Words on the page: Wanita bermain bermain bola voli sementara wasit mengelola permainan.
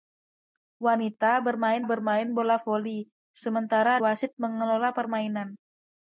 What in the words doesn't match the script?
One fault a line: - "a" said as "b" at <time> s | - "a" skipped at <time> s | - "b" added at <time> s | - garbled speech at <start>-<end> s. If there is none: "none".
none